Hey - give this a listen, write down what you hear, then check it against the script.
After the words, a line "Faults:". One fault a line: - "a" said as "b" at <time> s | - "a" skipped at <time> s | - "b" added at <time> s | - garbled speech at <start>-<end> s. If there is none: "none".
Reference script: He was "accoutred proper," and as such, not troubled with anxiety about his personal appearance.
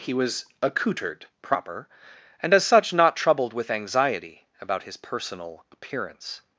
He was "accoutred proper," and as such, not troubled with anxiety about his personal appearance.
Faults:
none